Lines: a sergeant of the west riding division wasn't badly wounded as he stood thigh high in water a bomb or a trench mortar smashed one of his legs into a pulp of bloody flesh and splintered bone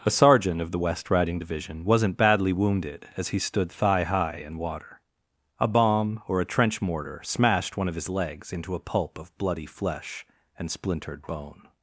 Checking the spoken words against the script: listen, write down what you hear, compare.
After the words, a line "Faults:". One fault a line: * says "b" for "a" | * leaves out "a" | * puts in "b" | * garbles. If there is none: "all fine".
a sergeant of the west riding division wasn't badly wounded as he stood thigh high in water a bomb or a trench mortar smashed one of his legs into a pulp of bloody flesh and splintered bone
Faults:
all fine